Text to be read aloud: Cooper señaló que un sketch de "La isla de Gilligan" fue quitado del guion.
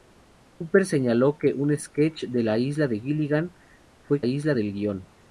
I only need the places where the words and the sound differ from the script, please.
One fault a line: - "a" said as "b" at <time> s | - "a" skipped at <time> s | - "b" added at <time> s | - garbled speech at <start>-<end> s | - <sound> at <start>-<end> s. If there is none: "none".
- "quitado" said as "isla" at 4.2 s